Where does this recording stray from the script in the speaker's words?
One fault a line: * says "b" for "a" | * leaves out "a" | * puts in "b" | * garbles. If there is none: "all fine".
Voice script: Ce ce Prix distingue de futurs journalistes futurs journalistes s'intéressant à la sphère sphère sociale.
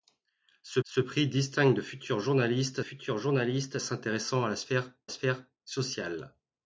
all fine